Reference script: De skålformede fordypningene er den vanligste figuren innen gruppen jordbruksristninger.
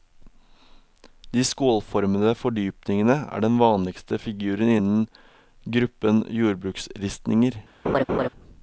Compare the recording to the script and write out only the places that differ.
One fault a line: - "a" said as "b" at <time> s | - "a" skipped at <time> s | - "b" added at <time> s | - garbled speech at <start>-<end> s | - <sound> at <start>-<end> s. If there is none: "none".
- laugh at 7.8-8.3 s